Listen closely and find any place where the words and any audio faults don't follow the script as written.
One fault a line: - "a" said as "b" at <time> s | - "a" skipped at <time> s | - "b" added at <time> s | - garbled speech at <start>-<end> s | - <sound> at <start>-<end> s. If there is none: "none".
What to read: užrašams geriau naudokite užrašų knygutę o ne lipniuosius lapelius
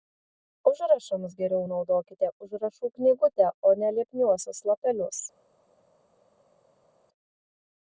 none